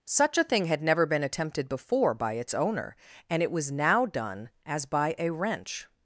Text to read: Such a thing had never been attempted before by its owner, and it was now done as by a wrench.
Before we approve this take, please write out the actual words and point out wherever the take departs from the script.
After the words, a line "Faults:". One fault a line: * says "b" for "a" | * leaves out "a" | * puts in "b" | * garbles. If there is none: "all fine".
Such a thing had never been attempted before by its owner, and it was now done as by a wrench.
Faults:
all fine